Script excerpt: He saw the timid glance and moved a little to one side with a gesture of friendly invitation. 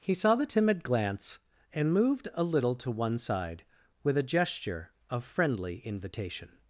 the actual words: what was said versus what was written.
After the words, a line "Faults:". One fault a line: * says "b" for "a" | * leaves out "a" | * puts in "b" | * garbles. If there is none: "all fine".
He saw the timid glance and moved a little to one side with a gesture of friendly invitation.
Faults:
all fine